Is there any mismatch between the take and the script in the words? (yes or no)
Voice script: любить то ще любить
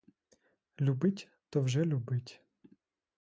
yes